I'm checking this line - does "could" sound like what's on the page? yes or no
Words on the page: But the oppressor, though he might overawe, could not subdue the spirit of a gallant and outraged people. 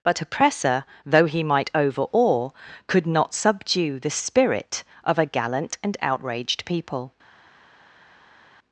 yes